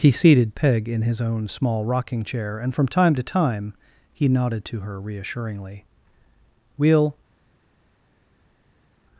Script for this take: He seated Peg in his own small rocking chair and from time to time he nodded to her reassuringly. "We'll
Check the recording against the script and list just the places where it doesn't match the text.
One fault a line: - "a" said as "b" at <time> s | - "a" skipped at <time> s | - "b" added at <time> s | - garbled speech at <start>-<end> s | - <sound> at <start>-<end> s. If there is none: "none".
none